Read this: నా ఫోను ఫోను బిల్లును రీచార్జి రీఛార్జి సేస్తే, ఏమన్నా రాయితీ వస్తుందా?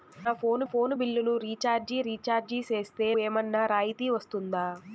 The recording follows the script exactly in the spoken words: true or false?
true